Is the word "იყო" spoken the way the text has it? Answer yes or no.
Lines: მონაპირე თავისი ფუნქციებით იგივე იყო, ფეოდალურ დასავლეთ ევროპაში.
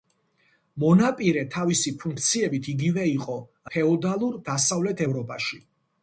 yes